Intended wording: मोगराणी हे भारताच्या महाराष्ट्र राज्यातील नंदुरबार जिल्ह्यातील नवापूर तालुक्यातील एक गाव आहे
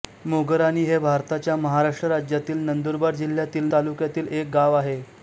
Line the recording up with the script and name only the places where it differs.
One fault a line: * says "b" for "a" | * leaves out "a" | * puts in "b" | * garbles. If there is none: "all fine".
* leaves out "नवापूर"